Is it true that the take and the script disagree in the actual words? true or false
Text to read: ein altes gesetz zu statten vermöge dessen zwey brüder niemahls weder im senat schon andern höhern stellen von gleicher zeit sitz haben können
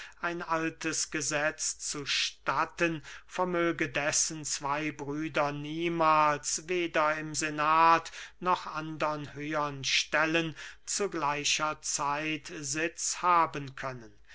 true